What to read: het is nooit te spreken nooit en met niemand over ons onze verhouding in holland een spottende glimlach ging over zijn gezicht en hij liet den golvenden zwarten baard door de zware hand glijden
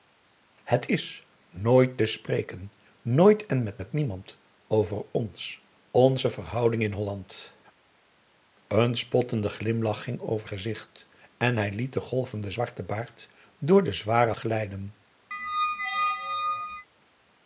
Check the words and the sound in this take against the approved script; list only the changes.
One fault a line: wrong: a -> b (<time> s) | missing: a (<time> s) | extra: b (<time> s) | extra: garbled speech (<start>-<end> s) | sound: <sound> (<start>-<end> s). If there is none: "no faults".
extra: met (3.8 s)
missing: zijn (10.5 s)
missing: hand (14.3 s)
sound: squeak (15.3-16.9 s)